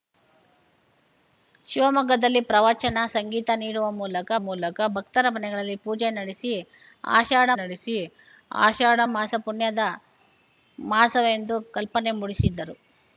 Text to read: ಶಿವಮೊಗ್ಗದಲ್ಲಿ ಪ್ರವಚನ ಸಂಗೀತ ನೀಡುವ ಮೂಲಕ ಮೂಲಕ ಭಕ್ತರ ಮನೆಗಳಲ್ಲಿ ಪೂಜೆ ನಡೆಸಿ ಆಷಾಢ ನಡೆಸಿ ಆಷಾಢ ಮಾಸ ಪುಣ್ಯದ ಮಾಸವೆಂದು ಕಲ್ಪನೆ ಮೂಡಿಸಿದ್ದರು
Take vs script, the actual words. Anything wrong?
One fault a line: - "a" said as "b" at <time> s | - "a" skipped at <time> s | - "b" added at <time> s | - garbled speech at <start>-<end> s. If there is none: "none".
none